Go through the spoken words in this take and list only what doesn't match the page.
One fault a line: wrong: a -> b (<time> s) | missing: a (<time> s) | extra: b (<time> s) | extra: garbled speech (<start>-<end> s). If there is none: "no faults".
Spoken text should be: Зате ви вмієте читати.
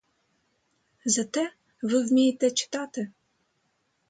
no faults